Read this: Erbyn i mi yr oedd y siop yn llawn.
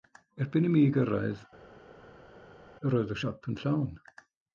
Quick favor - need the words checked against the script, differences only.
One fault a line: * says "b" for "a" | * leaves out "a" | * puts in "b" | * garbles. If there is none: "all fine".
* puts in "gyrraedd"